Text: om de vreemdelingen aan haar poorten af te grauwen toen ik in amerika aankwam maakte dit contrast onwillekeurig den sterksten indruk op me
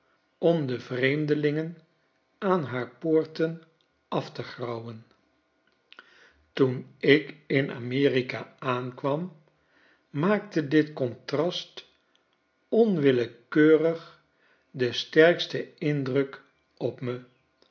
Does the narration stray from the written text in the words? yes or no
no